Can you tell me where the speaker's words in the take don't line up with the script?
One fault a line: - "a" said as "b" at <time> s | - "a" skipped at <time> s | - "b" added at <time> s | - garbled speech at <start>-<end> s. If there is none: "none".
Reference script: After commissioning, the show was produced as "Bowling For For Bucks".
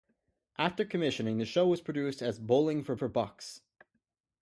none